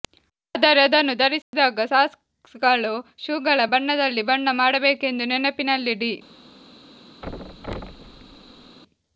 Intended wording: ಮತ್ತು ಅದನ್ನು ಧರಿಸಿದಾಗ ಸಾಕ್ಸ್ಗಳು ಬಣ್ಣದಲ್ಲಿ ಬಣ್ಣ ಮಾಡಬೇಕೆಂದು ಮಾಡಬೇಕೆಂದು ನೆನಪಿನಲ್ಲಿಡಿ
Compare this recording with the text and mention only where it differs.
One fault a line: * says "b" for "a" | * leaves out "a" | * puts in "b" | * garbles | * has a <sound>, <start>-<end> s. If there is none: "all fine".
* says "ಆದರೆ" for "ಮತ್ತು"
* has a dropout, 1.4-1.5 s
* puts in "ಶೂಗಳ"
* leaves out "ಮಾಡಬೇಕೆಂದು"
* has a thud, 7.2-8.8 s